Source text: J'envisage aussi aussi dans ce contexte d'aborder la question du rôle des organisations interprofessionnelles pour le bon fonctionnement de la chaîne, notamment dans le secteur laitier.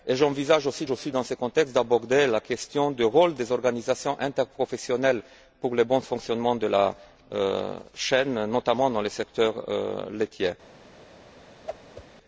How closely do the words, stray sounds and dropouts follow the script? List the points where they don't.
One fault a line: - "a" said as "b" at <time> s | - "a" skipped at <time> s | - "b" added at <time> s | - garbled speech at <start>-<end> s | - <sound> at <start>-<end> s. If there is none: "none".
- whoosh at 11.7-12.0 s